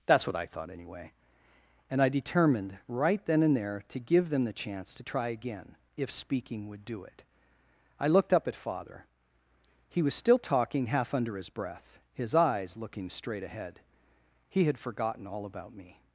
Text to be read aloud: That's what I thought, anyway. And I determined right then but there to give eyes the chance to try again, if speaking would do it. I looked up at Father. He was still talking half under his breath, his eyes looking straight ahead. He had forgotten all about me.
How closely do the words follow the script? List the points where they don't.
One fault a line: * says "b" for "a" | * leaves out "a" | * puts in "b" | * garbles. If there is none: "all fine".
* says "and" for "but"
* says "them" for "eyes"